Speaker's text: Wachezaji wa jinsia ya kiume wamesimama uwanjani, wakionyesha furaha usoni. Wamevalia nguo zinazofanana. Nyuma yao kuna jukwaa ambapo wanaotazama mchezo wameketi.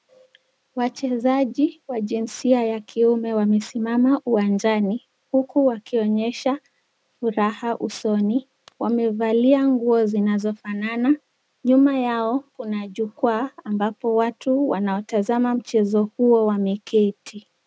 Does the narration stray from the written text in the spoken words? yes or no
yes